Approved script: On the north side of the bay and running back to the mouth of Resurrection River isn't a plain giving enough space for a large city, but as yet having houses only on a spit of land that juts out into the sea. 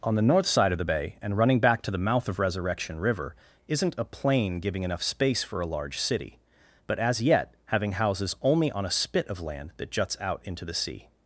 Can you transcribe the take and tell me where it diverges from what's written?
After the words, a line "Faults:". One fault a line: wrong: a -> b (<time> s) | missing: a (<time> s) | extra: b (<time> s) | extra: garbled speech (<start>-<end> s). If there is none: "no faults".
On the north side of the bay and running back to the mouth of Resurrection River isn't a plain giving enough space for a large city, but as yet having houses only on a spit of land that juts out into the sea.
Faults:
no faults